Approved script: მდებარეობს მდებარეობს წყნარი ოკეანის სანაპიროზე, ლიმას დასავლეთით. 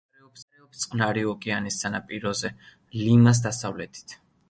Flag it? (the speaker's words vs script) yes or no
no